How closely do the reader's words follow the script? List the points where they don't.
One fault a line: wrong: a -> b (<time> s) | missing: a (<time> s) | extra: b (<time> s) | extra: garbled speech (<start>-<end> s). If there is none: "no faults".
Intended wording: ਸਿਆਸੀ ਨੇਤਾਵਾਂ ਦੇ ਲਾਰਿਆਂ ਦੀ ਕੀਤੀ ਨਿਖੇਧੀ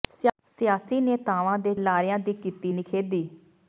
no faults